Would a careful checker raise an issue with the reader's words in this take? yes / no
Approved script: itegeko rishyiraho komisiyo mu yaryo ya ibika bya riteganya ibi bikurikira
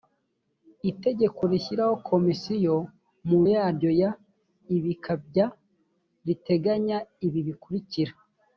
no